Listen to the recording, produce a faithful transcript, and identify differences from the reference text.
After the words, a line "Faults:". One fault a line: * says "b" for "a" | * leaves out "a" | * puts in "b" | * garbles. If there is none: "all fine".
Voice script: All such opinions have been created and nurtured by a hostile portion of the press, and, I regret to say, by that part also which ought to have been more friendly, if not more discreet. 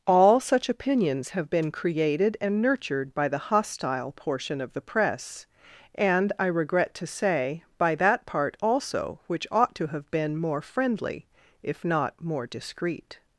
All such opinions have been created and nurtured by the hostile portion of the press, and, I regret to say, by that part also which ought to have been more friendly, if not more discreet.
Faults:
* says "the" for "a"